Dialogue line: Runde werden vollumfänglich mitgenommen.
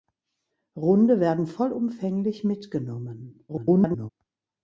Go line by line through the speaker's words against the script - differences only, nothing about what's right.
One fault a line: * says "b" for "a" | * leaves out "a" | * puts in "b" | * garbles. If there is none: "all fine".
* garbles